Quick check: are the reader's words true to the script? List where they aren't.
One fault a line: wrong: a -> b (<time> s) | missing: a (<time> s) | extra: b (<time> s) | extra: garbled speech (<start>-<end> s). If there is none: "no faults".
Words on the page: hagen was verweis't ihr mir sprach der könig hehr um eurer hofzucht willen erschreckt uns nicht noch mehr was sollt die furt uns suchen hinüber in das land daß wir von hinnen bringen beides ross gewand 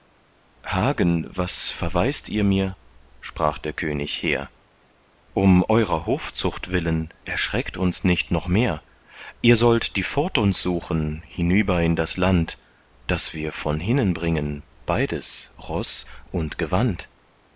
wrong: was -> ihr (9.4 s)
extra: und (16.3 s)